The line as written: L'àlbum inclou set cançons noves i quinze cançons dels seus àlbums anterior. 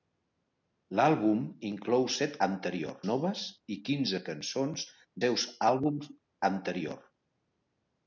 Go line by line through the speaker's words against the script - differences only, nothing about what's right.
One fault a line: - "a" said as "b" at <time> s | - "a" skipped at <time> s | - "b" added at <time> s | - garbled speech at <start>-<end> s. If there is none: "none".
- "cançons" said as "anterior" at 2.5 s
- "dels" skipped at 4.8 s